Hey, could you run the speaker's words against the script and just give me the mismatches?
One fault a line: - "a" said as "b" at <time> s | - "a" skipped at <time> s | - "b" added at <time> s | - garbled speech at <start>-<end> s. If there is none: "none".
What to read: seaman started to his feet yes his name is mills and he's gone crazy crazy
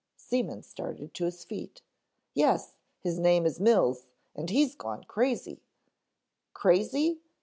none